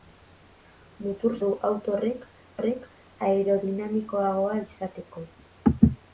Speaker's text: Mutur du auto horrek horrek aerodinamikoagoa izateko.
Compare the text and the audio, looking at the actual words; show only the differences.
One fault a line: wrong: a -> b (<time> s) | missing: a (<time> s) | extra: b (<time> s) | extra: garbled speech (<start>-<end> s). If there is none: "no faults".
no faults